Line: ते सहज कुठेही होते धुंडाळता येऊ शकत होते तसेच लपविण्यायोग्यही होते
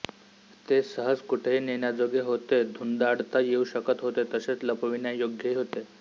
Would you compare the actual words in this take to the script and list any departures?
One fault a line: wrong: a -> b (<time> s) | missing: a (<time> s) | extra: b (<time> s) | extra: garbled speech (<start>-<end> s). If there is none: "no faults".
extra: नेण्याजोगे (1.6 s)